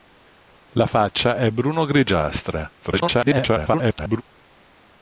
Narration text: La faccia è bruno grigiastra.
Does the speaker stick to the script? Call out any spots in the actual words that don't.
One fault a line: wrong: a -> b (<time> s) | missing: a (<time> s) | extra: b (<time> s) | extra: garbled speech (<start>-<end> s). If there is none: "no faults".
extra: garbled speech (2.8-4.2 s)